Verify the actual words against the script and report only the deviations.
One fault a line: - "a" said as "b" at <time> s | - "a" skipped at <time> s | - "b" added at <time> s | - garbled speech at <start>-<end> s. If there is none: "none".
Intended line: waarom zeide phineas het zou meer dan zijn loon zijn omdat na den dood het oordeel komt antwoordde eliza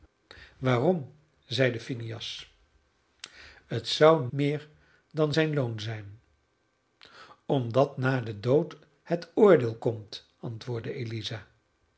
none